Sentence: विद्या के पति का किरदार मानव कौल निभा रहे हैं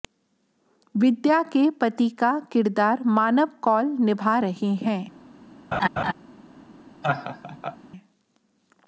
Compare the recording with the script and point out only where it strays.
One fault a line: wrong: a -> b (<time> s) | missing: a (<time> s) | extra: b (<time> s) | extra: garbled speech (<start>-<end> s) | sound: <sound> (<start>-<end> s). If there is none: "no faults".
sound: laugh (5.7-6.1 s)
sound: laugh (7.0-7.8 s)